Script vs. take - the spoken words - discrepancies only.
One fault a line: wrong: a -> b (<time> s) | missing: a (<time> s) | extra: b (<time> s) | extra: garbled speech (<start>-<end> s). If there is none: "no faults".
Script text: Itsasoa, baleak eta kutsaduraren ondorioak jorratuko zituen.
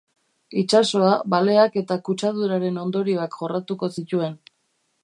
no faults